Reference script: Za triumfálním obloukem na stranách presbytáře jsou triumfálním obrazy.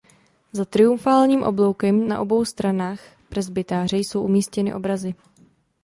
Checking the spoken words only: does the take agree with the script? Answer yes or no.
no